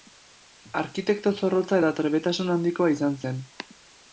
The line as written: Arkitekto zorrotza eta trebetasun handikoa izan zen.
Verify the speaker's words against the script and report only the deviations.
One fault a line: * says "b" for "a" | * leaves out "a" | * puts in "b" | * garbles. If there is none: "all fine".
all fine